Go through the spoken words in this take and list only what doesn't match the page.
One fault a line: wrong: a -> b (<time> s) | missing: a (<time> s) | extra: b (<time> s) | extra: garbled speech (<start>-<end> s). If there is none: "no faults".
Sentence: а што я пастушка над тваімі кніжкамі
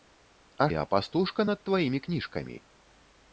missing: што (0.7 s)